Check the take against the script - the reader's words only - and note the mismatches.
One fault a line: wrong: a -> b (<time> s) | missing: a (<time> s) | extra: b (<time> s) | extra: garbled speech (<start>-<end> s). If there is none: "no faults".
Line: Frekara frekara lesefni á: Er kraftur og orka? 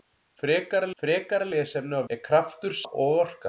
no faults